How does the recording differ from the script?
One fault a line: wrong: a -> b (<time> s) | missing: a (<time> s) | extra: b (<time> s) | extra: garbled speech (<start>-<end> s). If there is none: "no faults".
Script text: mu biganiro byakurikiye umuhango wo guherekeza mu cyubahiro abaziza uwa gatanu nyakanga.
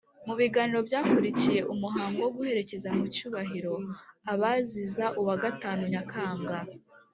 no faults